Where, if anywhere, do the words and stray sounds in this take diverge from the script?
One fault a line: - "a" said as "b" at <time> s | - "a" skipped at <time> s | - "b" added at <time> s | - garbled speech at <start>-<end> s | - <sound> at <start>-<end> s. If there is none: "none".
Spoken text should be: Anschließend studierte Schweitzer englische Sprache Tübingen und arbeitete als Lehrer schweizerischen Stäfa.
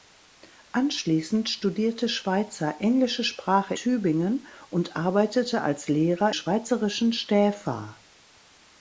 none